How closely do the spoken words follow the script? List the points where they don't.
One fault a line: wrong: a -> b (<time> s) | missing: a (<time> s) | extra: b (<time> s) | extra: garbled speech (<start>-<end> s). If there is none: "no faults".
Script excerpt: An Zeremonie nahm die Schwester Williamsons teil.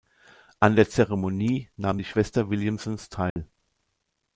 extra: der (0.8 s)